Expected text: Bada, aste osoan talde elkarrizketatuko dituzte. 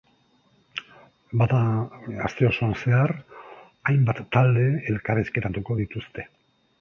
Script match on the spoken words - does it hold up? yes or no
no